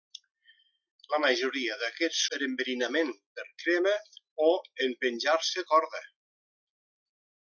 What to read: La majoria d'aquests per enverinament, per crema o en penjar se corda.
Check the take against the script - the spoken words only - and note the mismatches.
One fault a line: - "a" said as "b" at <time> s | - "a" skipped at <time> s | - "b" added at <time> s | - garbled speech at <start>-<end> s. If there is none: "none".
none